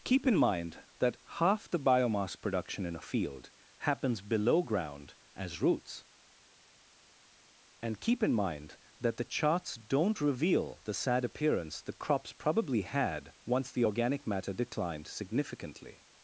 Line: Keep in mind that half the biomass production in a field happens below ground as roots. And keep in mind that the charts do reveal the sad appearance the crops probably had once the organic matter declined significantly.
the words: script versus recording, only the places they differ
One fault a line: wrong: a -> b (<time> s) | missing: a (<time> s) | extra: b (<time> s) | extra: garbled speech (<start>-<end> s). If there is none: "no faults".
wrong: do -> don't (9.8 s)